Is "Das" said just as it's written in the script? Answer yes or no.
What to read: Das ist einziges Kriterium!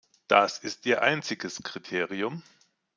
yes